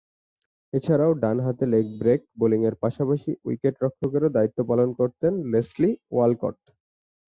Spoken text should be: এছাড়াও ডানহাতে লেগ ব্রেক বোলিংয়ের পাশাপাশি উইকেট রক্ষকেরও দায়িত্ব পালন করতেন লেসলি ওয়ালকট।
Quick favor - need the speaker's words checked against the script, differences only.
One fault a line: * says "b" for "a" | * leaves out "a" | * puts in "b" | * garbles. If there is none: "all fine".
all fine